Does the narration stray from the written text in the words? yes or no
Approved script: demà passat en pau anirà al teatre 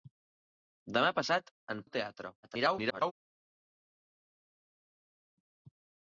yes